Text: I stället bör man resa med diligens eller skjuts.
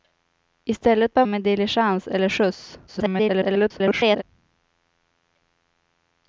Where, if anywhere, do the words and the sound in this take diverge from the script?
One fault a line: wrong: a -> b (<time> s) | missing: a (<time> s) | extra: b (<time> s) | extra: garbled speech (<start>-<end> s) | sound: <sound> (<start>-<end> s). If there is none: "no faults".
missing: man resa (1.2 s)
extra: garbled speech (2.9-4.2 s)